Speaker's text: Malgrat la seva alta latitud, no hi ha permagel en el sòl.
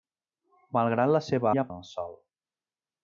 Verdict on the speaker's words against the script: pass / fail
fail